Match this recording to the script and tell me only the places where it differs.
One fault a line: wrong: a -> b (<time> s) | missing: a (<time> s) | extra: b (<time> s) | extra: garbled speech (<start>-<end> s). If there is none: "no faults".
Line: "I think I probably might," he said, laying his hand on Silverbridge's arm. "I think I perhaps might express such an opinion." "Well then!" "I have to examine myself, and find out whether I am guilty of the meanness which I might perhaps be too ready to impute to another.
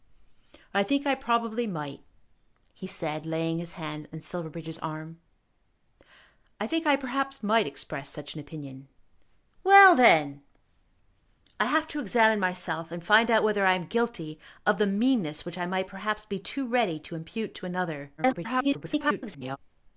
extra: garbled speech (18.2-19.6 s)